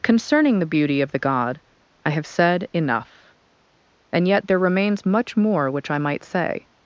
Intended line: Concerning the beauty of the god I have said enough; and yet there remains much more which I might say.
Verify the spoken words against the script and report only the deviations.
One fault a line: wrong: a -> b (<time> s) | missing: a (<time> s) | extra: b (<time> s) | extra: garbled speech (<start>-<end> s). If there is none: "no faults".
no faults